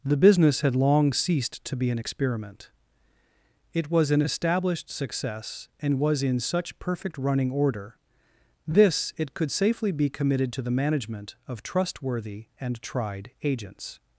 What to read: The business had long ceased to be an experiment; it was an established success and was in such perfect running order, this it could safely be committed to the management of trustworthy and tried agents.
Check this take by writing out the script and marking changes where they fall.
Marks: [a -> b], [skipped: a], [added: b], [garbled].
The business had long ceased to be an experiment; it was an established success and was in such perfect running order, this it could safely be committed to the management of trustworthy and tried agents.